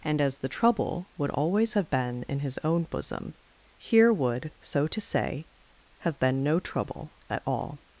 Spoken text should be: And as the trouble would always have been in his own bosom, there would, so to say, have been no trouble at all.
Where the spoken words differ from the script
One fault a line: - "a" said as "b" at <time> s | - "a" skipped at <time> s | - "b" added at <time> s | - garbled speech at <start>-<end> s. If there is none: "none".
- "there" said as "here" at 3.8 s